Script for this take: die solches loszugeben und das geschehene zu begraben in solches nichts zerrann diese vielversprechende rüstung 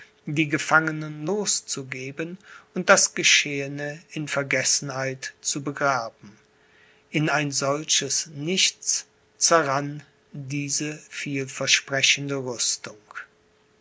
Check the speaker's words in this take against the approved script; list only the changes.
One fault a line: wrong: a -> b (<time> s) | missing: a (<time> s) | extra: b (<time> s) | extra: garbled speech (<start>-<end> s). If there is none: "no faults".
wrong: solches -> gefangenen (0.5 s)
extra: in vergessenheit (4.1 s)
extra: ein (7.3 s)